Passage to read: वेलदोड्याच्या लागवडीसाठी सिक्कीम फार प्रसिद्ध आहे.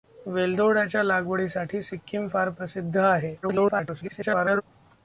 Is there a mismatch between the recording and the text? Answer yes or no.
yes